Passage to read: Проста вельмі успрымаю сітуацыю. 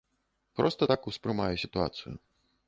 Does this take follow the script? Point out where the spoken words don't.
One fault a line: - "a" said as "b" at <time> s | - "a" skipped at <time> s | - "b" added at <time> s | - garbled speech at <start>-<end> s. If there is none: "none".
- "вельмі" said as "так" at 0.9 s